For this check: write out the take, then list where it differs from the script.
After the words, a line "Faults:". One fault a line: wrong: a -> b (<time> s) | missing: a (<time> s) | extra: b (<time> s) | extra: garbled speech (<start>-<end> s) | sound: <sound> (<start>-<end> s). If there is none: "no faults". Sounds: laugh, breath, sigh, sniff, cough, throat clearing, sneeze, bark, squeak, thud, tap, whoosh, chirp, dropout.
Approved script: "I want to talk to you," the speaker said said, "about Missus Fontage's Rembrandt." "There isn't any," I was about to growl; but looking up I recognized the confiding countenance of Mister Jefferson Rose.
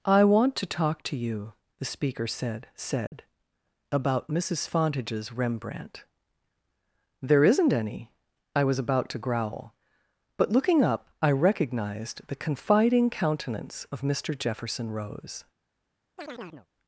"I want to talk to you," the speaker said said, "about Missus Fontage's Rembrandt." "There isn't any," I was about to growl; but looking up I recognized the confiding countenance of Mister Jefferson Rose.
Faults:
sound: dropout (3.1-3.1 s)
sound: chirp (16.2-16.7 s)